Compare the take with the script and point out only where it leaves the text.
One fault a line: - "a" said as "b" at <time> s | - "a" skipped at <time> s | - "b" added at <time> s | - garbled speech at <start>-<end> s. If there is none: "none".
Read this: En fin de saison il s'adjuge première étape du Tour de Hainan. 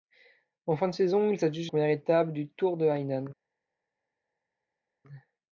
none